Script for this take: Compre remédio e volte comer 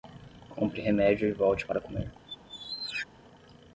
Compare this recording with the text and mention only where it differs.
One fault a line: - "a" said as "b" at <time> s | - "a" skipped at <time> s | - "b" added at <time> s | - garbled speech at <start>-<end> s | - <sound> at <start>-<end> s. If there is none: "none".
- "para" added at 1.7 s
- squeak at 2.3-3.1 s